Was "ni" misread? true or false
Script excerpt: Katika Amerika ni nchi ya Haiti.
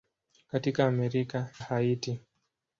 true